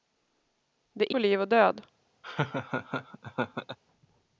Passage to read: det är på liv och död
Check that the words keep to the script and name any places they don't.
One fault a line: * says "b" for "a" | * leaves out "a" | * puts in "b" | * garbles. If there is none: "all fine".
all fine